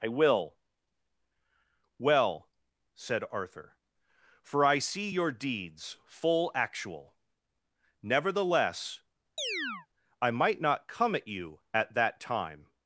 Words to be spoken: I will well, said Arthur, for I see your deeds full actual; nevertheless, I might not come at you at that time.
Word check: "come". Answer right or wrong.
right